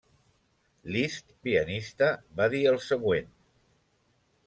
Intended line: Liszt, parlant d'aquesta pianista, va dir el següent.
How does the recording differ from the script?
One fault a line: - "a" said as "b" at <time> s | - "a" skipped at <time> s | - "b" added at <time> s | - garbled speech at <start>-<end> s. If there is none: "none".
- "parlant d'aquesta" skipped at 1.3 s